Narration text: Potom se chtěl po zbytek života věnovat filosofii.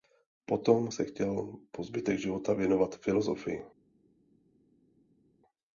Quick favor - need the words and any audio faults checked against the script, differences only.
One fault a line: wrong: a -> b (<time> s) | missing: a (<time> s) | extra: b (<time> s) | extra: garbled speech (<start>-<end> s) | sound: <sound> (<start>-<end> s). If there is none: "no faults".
no faults